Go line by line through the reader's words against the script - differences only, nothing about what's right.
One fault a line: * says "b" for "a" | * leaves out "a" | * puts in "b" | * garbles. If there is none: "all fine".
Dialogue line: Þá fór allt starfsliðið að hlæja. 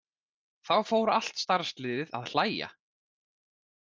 all fine